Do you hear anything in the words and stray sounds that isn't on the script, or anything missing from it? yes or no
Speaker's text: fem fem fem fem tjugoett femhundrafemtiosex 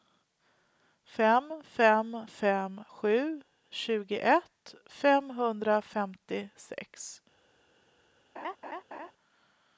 yes